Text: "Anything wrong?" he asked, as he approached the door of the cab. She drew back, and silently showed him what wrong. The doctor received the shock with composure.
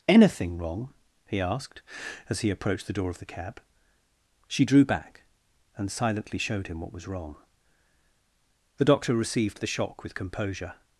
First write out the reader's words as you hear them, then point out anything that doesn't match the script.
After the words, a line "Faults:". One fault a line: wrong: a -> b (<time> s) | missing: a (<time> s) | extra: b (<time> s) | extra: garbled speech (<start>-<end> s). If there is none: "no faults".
"Anything wrong?" he asked, as he approached the door of the cab. She drew back, and silently showed him what was wrong. The doctor received the shock with composure.
Faults:
extra: was (6.9 s)